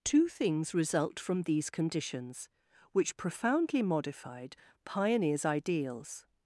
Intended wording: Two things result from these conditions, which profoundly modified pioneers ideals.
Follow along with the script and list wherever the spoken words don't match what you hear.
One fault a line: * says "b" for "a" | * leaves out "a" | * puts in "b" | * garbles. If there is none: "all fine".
all fine